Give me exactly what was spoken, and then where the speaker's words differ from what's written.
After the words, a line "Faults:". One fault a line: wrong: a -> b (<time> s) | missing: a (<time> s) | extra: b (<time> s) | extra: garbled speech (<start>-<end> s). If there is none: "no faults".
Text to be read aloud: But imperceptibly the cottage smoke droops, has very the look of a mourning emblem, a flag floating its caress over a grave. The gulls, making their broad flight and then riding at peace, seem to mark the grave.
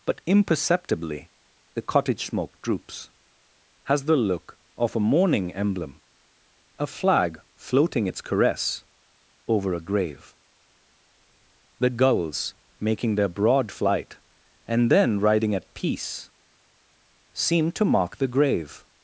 But imperceptibly the cottage smoke droops, has the look of a mourning emblem, a flag floating its caress over a grave. The gulls, making their broad flight and then riding at peace, seem to mark the grave.
Faults:
missing: very (4.0 s)